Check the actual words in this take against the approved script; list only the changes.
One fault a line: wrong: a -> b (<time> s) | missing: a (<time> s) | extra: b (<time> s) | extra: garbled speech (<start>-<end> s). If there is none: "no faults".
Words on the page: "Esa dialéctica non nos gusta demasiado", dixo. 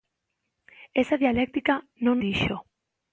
missing: nos gusta demasiado (2.1 s)